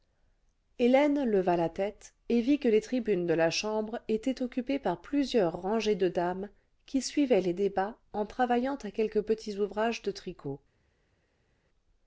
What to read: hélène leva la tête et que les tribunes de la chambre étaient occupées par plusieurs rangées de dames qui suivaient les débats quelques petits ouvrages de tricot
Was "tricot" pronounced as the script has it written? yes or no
yes